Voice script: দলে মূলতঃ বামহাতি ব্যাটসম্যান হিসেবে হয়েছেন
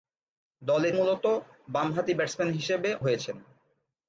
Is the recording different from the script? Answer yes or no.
no